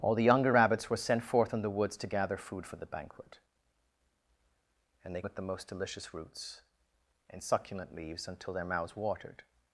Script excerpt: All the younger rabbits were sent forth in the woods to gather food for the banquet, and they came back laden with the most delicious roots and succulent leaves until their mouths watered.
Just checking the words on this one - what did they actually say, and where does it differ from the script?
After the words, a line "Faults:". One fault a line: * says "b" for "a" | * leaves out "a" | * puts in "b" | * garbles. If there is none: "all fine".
All the younger rabbits were sent forth in the woods to gather food for the banquet, and they with the most delicious roots and succulent leaves until their mouths watered.
Faults:
* leaves out "came back laden"